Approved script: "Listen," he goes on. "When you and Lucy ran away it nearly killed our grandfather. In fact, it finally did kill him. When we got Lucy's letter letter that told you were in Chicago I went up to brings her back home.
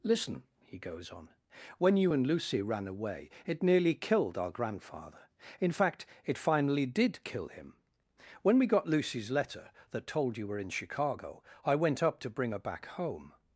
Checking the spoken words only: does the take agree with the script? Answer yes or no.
no